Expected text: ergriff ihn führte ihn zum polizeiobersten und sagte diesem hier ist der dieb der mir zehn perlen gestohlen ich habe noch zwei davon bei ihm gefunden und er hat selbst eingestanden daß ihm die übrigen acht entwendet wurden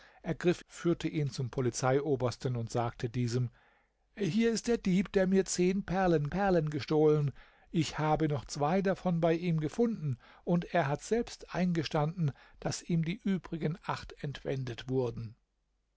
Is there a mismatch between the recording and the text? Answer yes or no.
yes